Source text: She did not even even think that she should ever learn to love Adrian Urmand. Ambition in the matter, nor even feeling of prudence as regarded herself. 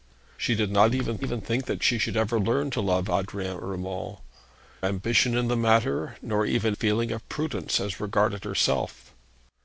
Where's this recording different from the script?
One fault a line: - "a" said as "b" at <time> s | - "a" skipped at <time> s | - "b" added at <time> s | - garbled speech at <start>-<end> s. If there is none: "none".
none